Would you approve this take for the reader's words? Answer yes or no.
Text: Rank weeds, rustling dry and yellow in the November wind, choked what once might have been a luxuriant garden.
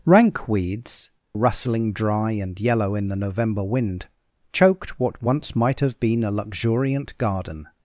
yes